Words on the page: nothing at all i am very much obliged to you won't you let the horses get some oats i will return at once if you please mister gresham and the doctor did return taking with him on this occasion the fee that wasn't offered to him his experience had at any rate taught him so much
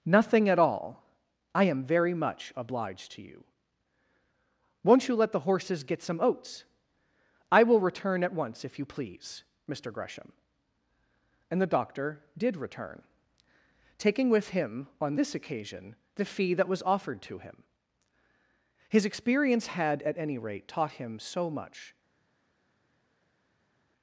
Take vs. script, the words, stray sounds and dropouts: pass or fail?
fail